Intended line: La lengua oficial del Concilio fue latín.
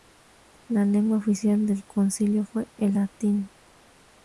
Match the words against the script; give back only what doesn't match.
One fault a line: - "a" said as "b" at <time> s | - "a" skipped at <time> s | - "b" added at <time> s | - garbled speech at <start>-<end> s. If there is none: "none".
- "el" added at 2.8 s